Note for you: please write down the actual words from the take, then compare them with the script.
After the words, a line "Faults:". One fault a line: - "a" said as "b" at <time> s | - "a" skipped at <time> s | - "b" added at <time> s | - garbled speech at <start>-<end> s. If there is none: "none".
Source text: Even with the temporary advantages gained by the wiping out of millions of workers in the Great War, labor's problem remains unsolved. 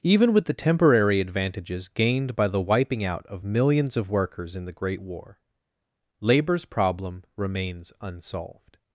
Even with the temporary advantages gained by the wiping out of millions of workers in the Great War, labor's problem remains unsolved.
Faults:
none